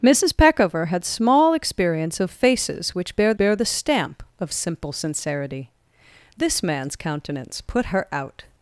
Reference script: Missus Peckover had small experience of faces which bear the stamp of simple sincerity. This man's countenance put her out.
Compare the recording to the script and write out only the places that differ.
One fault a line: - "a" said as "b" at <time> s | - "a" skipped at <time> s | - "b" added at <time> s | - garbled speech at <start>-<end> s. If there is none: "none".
- "bear" added at 3.4 s